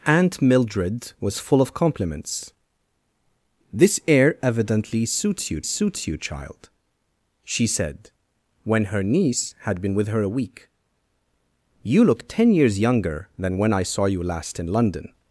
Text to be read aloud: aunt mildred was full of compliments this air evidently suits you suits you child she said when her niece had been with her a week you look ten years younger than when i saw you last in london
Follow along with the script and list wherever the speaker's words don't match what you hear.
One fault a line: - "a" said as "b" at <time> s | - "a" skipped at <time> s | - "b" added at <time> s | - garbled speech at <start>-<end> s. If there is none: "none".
none